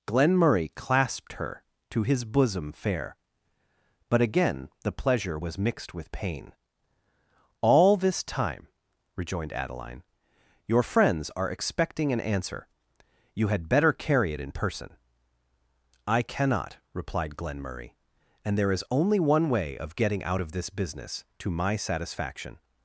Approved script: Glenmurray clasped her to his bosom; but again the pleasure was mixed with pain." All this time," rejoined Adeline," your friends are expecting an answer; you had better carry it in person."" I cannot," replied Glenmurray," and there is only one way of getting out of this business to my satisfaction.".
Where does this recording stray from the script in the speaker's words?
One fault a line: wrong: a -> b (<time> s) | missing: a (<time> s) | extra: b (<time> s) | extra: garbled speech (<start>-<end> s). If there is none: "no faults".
extra: fair (2.7 s)